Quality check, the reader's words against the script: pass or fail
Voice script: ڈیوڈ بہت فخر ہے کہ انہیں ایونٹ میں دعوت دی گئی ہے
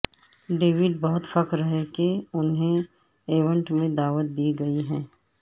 pass